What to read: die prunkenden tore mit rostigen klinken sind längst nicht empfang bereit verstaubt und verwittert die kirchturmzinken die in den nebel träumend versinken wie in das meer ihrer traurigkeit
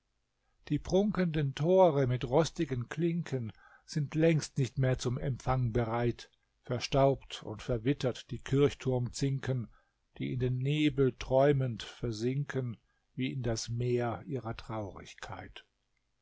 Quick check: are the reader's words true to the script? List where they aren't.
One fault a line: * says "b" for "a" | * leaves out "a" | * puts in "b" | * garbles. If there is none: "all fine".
* puts in "mehr zum"